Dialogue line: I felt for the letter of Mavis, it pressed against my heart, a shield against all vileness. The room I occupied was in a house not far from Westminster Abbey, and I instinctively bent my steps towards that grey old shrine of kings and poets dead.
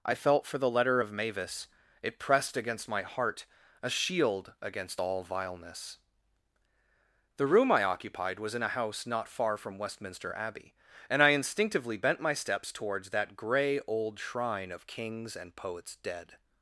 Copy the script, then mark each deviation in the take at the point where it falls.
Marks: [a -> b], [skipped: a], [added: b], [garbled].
I felt for the letter of Mavis, it pressed against my heart, a shield against all vileness. The room I occupied was in a house not far from Westminster Abbey, and I instinctively bent my steps towards that grey old shrine of kings and poets dead.